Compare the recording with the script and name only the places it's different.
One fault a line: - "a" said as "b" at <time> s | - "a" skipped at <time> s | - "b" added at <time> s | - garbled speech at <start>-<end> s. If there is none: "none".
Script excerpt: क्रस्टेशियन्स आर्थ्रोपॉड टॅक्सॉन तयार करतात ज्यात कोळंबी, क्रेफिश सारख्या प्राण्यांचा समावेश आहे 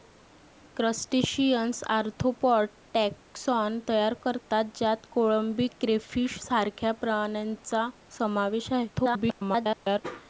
- garbled speech at 8.9-10.0 s